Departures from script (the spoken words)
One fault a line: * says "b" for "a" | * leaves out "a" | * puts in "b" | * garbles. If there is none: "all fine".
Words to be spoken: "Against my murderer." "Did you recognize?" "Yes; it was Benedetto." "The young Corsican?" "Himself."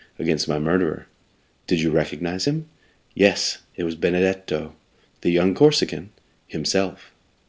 * puts in "him"